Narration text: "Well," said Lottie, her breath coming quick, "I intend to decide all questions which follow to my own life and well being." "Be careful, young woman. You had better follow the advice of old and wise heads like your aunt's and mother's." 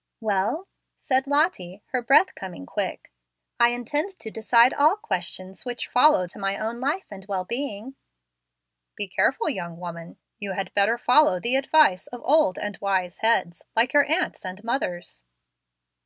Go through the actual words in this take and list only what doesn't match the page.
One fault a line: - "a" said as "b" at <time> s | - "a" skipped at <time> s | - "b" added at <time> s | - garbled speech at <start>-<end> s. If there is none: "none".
none